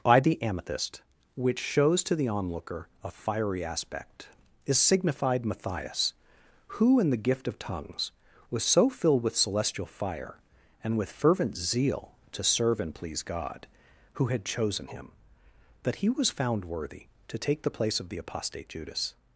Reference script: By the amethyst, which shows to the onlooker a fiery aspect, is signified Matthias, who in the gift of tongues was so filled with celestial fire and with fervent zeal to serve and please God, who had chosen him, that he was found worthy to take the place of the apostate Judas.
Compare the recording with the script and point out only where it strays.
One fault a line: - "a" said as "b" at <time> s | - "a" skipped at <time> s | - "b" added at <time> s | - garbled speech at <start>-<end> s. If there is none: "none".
none